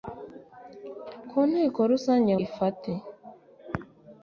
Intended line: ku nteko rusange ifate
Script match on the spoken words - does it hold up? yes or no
yes